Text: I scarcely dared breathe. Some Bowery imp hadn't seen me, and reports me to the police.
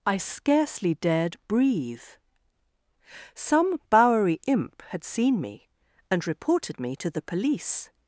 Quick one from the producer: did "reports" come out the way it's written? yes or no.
no